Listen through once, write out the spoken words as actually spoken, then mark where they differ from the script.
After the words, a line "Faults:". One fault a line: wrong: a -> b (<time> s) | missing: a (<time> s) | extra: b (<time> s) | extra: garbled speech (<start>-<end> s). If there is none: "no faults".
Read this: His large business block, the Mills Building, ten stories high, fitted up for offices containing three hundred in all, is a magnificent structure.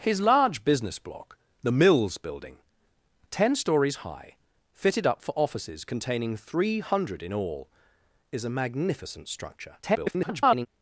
His large business block, the Mills Building, ten stories high, fitted up for offices containing three hundred in all, is a magnificent structure. [garbled]
Faults:
extra: garbled speech (9.8-10.7 s)